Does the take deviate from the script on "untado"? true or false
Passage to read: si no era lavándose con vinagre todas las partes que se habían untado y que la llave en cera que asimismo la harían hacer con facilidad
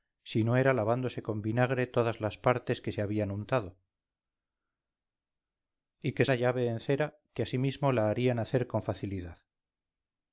false